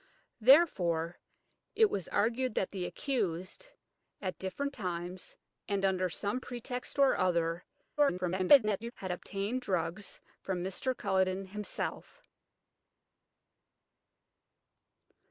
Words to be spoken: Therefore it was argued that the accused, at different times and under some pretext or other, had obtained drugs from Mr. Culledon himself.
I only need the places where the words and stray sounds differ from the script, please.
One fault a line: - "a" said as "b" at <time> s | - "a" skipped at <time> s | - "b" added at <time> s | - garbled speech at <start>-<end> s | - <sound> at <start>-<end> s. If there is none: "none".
- garbled speech at 8.0-8.9 s